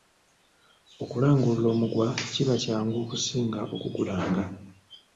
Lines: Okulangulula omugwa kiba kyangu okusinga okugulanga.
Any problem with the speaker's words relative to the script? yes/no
no